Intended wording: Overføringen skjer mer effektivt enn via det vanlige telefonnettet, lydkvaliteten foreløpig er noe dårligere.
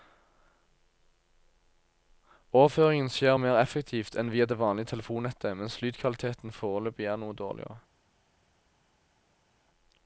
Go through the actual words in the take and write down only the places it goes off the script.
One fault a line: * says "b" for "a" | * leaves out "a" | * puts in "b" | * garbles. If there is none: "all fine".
* puts in "mens"